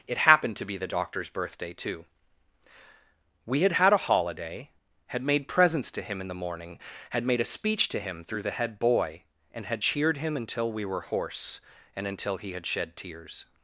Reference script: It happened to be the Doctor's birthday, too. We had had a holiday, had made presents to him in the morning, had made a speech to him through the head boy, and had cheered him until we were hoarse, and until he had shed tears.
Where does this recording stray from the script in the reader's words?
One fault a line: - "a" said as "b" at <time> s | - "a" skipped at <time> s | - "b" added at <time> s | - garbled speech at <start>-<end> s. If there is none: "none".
none